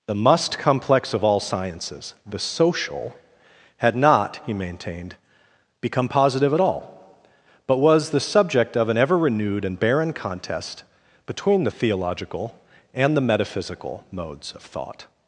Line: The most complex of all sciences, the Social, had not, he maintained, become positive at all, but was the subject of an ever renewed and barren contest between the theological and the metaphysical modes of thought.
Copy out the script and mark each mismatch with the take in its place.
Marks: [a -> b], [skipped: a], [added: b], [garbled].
The [most -> must] complex of all sciences, the Social, had not, he maintained, become positive at all, but was the subject of an ever renewed and barren contest between the theological and the metaphysical modes of thought.